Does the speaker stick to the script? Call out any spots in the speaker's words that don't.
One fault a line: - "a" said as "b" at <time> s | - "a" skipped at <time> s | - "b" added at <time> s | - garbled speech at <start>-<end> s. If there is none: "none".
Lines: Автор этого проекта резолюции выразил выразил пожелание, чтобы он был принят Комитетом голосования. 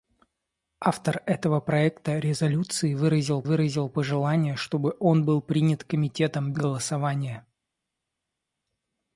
none